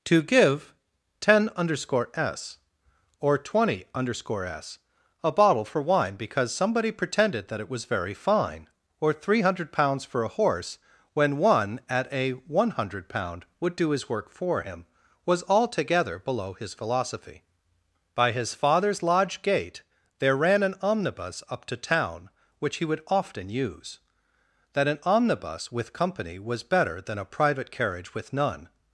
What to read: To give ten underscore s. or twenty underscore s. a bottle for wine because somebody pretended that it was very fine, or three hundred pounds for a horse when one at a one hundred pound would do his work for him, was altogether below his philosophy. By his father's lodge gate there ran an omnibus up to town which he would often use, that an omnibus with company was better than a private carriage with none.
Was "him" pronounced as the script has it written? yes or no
yes